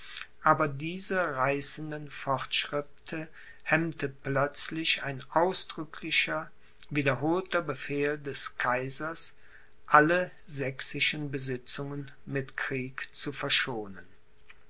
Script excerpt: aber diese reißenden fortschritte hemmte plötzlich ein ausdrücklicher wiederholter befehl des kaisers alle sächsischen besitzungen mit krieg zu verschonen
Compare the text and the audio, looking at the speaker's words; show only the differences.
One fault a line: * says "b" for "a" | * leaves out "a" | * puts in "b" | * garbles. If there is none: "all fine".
all fine